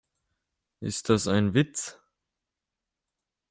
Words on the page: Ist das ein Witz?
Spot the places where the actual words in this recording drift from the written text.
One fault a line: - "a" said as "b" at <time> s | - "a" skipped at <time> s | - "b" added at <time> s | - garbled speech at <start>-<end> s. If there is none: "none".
none